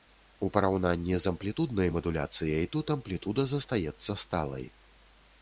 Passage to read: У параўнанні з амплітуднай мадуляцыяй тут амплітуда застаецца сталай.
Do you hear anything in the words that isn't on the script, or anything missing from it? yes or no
no